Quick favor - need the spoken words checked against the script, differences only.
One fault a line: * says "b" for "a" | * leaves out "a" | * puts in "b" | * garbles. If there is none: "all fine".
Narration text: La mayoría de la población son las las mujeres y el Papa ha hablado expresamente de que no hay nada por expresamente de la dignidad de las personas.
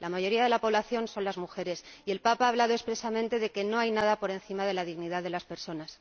* leaves out "las"
* says "encima" for "expresamente"